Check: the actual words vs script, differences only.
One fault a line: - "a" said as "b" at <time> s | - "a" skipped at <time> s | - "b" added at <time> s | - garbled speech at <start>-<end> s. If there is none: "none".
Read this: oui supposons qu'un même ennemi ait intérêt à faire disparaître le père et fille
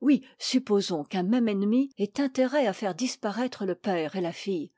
- "la" added at 4.2 s